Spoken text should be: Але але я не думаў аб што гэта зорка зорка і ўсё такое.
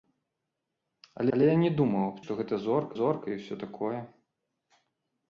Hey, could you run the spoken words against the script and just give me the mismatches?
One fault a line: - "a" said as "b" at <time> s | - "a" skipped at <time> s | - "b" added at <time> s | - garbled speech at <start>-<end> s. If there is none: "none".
none